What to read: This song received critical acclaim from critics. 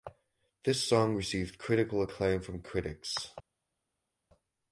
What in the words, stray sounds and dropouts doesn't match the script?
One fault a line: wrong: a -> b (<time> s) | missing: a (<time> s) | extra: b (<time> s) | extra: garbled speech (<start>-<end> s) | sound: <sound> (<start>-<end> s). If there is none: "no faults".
no faults